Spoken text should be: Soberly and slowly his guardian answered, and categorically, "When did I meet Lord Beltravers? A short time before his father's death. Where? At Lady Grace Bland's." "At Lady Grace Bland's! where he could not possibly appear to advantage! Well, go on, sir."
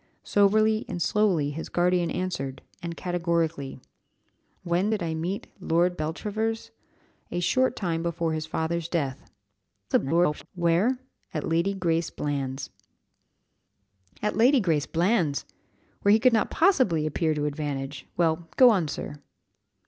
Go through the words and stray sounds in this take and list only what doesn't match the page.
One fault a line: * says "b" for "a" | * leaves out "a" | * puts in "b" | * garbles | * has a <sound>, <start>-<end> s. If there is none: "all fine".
* garbles